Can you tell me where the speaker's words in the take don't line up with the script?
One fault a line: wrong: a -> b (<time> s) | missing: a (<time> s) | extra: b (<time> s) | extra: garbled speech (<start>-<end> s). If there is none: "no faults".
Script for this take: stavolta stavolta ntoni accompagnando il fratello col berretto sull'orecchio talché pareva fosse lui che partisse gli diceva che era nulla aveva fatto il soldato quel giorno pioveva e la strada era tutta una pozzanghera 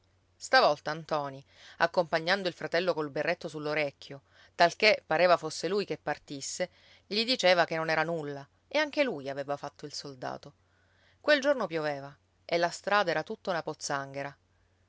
missing: stavolta (0.9 s)
extra: non (7.8 s)
extra: e anche lui (8.7 s)